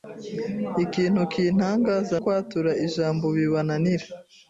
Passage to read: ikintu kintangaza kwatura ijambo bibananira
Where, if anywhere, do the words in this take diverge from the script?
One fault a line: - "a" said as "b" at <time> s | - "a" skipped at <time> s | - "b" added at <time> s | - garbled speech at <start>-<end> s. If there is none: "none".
none